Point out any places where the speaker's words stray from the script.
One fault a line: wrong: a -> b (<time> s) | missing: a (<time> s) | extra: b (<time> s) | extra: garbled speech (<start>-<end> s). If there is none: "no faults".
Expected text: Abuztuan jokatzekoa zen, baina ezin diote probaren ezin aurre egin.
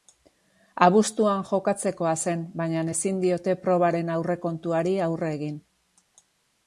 wrong: ezin -> aurrekontuari (4.2 s)